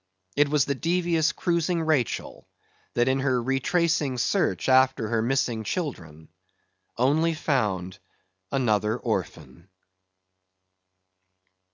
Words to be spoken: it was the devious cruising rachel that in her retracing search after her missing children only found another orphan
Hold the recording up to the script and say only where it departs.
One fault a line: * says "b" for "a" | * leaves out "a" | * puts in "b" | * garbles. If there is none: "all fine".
all fine